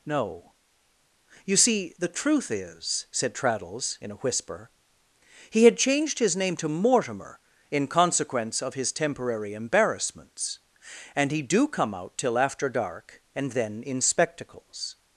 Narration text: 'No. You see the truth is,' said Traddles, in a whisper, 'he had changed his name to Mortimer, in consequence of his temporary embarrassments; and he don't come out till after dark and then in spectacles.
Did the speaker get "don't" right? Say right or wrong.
wrong